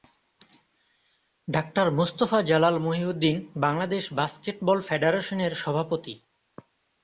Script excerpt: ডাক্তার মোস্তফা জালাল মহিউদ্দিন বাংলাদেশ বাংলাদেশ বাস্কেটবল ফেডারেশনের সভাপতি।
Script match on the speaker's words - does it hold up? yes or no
no